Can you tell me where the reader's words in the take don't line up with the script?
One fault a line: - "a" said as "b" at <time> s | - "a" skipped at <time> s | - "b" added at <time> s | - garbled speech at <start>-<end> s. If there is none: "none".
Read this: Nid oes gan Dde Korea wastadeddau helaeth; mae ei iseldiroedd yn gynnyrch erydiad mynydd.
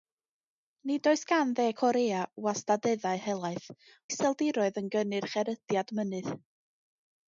- "mae ei" skipped at 3.7 s